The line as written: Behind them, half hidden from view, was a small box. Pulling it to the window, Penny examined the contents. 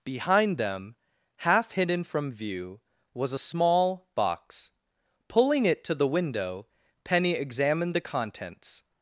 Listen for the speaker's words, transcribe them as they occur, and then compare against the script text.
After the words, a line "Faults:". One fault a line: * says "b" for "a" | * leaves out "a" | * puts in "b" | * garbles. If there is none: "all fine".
Behind them, half hidden from view, was a small box. Pulling it to the window, Penny examined the contents.
Faults:
all fine